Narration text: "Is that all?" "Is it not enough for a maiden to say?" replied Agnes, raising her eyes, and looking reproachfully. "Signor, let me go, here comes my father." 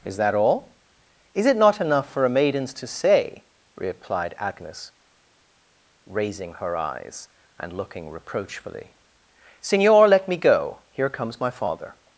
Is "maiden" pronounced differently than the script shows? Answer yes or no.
yes